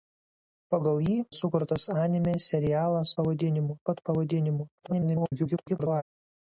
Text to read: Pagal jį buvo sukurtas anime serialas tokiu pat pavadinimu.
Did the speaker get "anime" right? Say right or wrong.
right